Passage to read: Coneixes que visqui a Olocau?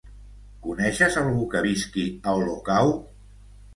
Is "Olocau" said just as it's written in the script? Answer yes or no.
yes